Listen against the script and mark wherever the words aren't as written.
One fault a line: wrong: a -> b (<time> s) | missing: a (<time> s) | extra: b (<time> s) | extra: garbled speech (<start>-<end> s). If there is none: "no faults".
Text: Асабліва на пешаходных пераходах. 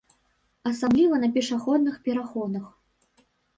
no faults